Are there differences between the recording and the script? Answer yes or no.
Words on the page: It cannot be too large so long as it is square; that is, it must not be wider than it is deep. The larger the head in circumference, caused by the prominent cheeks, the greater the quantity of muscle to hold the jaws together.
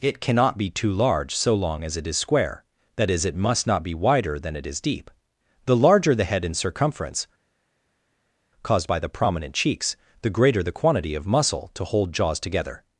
yes